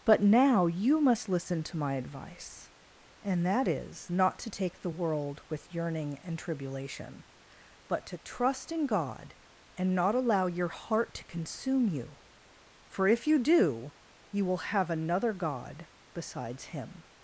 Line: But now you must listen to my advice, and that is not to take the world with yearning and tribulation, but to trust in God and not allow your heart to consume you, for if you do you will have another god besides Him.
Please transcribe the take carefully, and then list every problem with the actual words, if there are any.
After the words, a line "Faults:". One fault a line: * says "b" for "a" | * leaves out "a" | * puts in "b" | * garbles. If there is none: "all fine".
But now you must listen to my advice, and that is not to take the world with yearning and tribulation, but to trust in God and not allow your heart to consume you, for if you do you will have another god besides Him.
Faults:
all fine